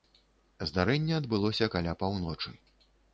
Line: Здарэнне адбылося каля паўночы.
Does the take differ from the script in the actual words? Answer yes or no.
no